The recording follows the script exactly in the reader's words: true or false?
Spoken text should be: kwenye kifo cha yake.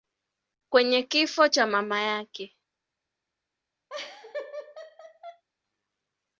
false